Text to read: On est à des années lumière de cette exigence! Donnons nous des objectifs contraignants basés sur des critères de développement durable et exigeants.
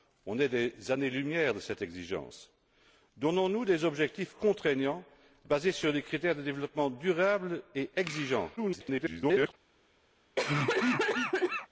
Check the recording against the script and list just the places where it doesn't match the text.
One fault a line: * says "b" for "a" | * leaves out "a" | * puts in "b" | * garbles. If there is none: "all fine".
* garbles